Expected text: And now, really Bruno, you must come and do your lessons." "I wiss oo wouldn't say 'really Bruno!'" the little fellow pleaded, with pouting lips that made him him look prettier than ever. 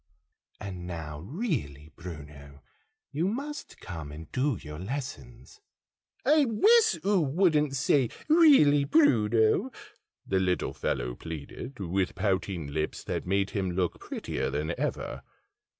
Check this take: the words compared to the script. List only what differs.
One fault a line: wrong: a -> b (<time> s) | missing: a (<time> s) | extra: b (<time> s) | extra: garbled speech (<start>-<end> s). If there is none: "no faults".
missing: him (13.7 s)